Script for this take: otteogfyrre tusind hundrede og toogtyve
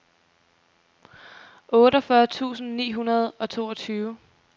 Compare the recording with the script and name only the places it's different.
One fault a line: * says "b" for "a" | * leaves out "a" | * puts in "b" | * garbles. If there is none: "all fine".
* puts in "ni"